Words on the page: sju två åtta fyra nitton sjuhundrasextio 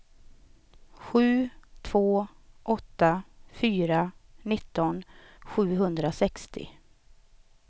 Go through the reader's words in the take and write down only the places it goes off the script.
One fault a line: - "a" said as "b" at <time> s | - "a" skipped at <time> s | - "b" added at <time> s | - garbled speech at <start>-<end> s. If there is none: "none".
none